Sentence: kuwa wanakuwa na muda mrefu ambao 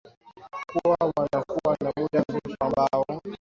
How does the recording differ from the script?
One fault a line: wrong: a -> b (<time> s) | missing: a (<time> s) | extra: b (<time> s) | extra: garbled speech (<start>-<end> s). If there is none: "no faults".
no faults